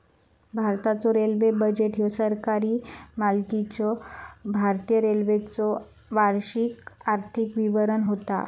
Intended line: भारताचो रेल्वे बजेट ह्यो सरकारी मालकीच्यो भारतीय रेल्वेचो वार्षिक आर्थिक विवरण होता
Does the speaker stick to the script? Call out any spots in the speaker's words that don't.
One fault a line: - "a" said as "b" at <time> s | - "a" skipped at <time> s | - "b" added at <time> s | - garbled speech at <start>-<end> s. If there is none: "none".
none